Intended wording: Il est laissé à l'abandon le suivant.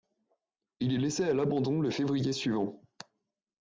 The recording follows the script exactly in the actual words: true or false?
false